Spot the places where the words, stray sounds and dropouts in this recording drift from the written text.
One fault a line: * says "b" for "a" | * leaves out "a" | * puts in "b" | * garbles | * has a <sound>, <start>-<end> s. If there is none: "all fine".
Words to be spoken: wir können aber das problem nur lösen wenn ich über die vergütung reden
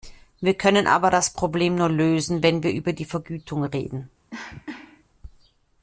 * says "wir" for "ich"
* has a cough, 4.3-5.0 s